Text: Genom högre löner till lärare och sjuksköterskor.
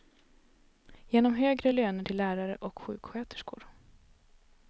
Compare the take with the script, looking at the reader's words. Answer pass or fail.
pass